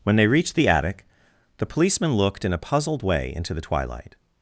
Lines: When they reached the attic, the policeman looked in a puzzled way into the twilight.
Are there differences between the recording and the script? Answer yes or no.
no